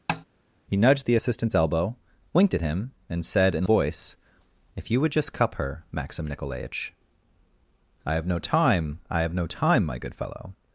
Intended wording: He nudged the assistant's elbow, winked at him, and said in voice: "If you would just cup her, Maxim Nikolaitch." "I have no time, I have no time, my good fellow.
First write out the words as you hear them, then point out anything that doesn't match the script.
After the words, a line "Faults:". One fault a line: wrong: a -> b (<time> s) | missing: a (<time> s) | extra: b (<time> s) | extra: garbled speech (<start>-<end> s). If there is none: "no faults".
He nudged the assistant's elbow, winked at him, and said in voice: "If you would just cup her, Maxim Nikolaitch." "I have no time, I have no time, my good fellow.
Faults:
no faults